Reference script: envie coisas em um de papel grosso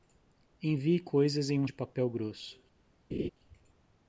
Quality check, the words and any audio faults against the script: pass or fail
fail